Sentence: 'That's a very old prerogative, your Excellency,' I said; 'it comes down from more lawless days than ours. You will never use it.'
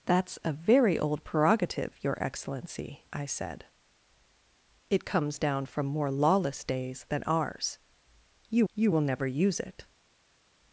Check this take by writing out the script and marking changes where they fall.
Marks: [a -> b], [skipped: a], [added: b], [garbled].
'That's a very old prerogative, your Excellency,' I said; 'it comes down from more lawless days than ours. You [added: you] will never use it.'